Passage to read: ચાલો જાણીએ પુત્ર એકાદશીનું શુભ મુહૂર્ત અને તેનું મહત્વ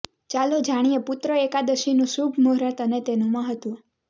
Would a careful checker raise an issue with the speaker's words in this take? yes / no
no